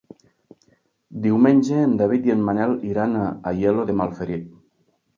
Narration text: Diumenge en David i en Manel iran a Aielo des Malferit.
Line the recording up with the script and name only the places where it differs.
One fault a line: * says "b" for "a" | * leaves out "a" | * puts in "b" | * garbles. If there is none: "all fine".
* says "de" for "des"